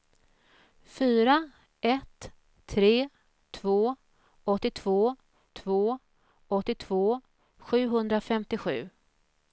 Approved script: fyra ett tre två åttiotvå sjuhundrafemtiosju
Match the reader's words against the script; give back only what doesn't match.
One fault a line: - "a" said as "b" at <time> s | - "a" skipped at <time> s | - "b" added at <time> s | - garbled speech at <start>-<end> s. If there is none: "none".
- "två åttiotvå" added at 5.5 s